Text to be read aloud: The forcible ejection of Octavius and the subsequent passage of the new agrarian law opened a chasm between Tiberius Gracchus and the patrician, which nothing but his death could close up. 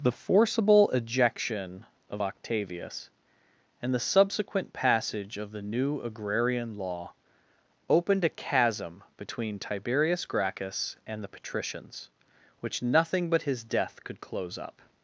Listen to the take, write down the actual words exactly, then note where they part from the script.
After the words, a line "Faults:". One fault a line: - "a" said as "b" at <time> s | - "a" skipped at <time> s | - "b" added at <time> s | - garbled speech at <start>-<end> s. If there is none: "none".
The forcible ejection of Octavius and the subsequent passage of the new agrarian law opened a chasm between Tiberius Gracchus and the patricians, which nothing but his death could close up.
Faults:
- "patrician" said as "patricians" at 11.3 s